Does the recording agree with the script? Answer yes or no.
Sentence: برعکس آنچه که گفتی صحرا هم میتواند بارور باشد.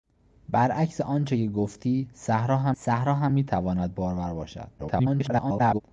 no